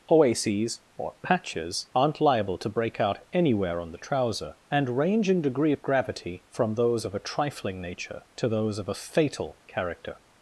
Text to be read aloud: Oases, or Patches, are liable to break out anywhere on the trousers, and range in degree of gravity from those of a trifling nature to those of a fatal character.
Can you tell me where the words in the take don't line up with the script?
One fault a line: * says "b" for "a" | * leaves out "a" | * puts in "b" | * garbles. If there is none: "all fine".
* says "aren't" for "are"
* says "trouser" for "trousers"